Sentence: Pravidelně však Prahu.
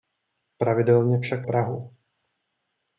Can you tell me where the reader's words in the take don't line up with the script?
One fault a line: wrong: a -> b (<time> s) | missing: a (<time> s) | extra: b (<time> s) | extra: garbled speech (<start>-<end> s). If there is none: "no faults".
no faults